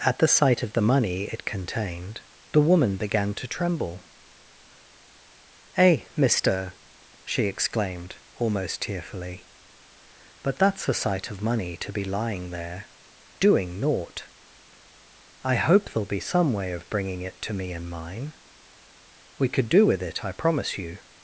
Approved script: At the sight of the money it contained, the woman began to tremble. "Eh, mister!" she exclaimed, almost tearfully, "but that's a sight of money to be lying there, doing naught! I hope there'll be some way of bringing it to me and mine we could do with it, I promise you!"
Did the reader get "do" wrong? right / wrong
right